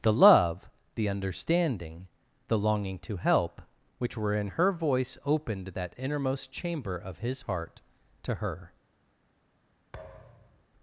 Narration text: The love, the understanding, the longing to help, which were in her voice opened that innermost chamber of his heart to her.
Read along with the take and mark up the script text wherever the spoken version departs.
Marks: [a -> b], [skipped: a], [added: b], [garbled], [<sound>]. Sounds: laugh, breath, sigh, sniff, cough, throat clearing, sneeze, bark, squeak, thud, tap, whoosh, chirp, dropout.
The love, the understanding, the longing to help, which were in her voice opened that innermost chamber of his heart to her. [thud]